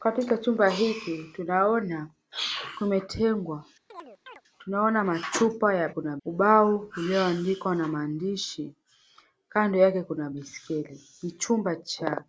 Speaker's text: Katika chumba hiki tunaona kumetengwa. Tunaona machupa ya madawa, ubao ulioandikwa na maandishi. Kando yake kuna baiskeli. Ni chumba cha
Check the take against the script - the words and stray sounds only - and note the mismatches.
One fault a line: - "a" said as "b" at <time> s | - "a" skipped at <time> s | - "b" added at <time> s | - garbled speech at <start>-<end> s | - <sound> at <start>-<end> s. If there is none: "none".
- chirp at 3.9-4.4 s
- "madawa" said as "kuna" at 5.9 s